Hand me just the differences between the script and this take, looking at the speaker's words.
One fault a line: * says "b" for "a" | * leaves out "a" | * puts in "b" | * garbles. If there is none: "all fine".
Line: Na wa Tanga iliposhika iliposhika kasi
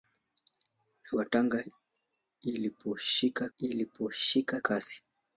all fine